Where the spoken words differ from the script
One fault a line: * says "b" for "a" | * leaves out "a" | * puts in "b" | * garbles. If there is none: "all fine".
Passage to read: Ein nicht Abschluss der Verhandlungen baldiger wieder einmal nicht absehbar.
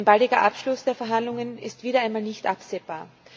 * says "baldiger" for "nicht"
* says "ist" for "baldiger"